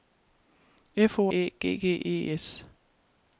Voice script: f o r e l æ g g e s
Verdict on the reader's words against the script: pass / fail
fail